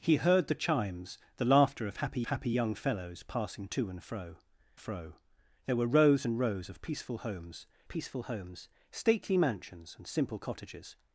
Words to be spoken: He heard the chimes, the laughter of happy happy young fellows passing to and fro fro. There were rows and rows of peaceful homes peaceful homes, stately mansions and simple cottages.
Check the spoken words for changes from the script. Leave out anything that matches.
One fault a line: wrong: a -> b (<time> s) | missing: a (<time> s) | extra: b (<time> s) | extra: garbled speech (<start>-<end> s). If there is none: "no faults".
no faults